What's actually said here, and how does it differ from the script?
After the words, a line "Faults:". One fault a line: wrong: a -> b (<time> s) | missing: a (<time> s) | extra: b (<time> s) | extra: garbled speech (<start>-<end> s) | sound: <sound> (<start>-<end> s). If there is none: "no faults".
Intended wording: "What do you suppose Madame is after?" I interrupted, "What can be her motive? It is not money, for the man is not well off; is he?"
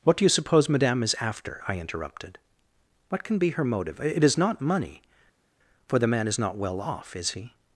"What do you suppose Madame is after?" I interrupted, "What can be her motive? It is not money, for the man is not well off; is he?"
Faults:
no faults